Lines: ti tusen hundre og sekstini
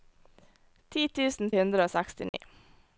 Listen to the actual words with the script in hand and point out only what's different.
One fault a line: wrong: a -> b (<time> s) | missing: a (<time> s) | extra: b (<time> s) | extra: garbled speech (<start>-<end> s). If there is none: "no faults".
no faults